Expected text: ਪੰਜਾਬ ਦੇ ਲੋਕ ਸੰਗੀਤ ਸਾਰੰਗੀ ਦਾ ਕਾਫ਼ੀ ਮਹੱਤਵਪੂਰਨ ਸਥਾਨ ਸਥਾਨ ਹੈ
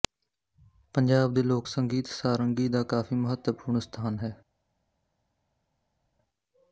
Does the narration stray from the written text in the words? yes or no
yes